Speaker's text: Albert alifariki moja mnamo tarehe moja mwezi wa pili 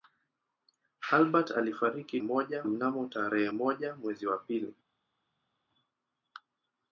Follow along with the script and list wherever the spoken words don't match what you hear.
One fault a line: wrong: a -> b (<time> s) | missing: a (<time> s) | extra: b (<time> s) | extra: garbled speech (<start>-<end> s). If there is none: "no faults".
no faults